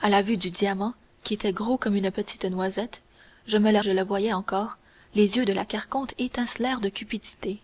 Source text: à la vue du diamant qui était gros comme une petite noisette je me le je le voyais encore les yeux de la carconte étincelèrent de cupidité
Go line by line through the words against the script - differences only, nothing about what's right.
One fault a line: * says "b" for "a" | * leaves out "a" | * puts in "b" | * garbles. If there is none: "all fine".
all fine